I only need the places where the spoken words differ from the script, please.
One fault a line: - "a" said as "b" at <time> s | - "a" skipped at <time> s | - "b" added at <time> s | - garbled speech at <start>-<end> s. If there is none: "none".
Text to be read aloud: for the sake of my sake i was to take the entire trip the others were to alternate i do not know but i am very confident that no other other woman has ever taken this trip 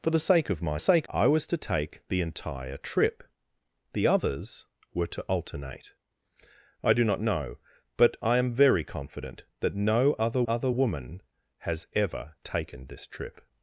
none